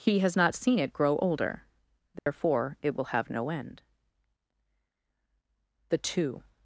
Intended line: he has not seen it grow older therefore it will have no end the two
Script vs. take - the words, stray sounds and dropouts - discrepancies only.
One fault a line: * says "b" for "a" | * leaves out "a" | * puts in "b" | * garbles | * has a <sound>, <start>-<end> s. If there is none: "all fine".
* has a dropout, 2.2-2.3 s